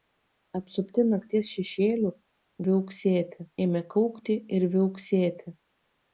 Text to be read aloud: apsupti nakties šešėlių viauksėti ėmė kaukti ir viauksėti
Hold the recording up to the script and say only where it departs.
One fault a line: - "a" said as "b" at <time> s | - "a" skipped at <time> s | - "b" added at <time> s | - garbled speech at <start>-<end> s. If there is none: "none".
none